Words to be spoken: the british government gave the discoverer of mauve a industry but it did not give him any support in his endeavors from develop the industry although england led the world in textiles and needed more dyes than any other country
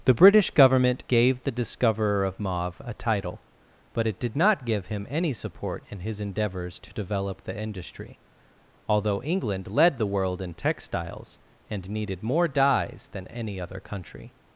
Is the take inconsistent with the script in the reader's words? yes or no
yes